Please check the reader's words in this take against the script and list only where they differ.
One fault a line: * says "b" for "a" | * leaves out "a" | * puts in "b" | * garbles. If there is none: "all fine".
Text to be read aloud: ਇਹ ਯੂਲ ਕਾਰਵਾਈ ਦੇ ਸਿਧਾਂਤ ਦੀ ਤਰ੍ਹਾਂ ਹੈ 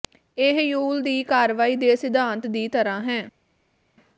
* puts in "ਦੀ"